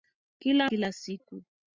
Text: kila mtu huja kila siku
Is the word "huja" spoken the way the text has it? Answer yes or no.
no